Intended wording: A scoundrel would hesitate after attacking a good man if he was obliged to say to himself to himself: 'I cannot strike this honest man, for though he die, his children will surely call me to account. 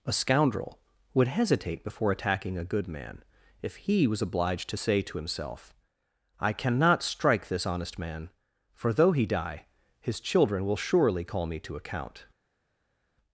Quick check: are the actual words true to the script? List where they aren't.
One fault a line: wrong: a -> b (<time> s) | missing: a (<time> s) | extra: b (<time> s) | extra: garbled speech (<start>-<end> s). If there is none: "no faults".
wrong: after -> before (1.8 s)
missing: to himself (5.7 s)